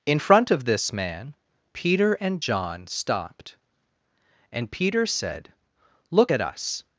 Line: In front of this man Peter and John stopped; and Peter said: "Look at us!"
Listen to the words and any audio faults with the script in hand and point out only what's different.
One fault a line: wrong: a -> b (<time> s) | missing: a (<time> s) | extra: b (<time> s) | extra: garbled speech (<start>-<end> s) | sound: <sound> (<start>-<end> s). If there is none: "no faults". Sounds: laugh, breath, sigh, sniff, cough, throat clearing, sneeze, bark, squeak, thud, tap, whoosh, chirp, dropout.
no faults